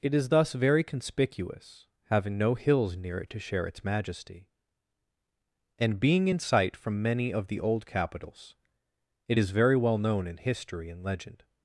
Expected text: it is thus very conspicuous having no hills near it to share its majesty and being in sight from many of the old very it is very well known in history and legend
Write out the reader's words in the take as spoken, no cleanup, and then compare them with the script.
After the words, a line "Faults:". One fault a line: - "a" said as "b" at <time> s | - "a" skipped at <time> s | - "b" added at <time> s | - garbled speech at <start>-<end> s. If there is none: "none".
it is thus very conspicuous having no hills near it to share its majesty and being in sight from many of the old capitals it is very well known in history and legend
Faults:
- "very" said as "capitals" at 7.8 s